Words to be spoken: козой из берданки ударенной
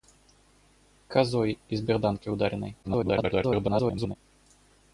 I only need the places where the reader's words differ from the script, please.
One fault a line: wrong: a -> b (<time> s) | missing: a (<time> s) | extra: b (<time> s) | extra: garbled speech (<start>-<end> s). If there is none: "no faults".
extra: garbled speech (2.8-4.2 s)